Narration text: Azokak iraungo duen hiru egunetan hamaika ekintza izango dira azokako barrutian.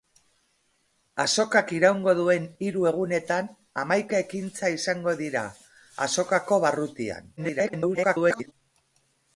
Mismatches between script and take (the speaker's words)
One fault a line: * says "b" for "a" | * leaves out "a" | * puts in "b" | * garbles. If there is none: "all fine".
* garbles